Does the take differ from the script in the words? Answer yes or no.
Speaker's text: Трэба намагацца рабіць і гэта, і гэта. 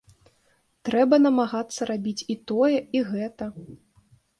yes